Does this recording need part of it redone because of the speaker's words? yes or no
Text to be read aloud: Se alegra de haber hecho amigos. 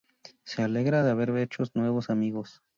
yes